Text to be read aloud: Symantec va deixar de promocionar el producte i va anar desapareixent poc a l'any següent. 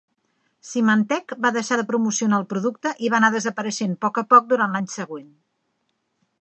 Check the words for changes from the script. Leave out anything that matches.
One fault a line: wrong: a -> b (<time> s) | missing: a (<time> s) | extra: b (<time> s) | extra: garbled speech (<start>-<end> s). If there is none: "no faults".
extra: poc durant (4.3 s)